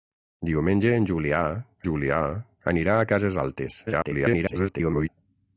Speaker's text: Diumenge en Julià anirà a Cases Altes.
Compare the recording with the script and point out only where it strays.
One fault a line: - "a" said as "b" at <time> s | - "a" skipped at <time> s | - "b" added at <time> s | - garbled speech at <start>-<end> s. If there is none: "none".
- "Julià" added at 1.9 s
- garbled speech at 3.9-5.1 s